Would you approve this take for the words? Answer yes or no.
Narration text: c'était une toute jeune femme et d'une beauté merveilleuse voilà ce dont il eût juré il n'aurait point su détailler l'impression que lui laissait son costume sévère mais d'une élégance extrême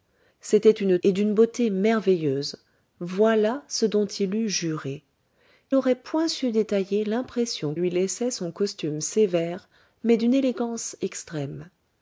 no